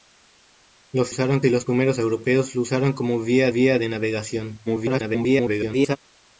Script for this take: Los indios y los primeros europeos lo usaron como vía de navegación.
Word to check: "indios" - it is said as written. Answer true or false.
false